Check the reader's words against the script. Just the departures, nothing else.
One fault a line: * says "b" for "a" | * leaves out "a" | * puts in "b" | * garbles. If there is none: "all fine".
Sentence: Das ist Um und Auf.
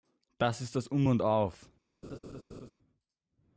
* puts in "das"